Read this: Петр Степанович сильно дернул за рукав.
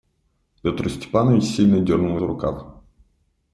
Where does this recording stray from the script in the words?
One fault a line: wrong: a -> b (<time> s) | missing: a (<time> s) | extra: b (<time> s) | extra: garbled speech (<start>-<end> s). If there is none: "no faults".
no faults